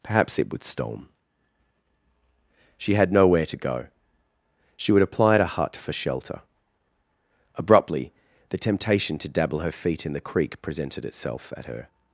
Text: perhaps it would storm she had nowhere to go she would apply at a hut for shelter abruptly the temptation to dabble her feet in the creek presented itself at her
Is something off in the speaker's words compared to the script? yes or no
no